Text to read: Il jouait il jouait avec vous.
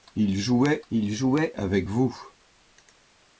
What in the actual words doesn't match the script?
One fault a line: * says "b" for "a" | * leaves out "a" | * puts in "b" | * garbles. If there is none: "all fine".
all fine